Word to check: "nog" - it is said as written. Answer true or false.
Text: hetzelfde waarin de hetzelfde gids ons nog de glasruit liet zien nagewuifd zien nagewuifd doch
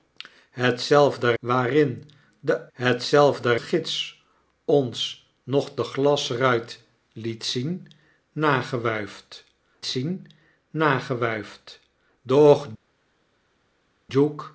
true